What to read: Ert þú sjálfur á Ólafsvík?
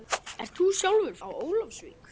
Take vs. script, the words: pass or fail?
pass